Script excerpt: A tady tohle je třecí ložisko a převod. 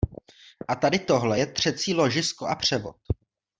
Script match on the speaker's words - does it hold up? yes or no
yes